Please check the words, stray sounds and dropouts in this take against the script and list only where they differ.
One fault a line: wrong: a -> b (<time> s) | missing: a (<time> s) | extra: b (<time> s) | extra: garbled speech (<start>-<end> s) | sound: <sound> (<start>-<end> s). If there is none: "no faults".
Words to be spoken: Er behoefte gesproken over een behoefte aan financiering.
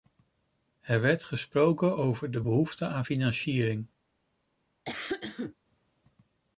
wrong: behoefte -> werd (1.0 s)
wrong: een -> de (2.3 s)
sound: cough (4.8-5.5 s)